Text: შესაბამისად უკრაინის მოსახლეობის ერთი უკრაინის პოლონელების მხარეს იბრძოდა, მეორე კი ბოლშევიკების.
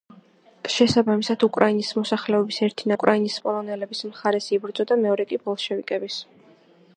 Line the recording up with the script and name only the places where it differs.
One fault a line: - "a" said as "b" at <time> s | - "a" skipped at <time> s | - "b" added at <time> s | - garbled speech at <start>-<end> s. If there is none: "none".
none